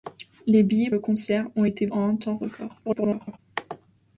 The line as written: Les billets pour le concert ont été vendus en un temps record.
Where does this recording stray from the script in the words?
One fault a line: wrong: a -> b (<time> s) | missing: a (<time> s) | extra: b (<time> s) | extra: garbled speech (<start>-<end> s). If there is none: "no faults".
missing: pour (0.9 s)
missing: vendus (1.9 s)
extra: garbled speech (2.8-3.4 s)